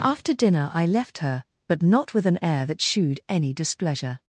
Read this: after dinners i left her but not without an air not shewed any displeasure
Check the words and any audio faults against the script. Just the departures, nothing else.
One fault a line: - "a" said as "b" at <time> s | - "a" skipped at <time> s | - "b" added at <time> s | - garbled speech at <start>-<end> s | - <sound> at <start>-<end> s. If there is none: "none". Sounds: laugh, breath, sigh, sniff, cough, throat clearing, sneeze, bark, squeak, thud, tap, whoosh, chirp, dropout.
- "dinners" said as "dinner" at 0.3 s
- "without" said as "with" at 2.1 s
- "not" said as "that" at 2.6 s